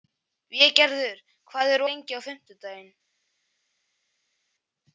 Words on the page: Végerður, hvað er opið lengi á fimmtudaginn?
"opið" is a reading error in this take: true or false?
true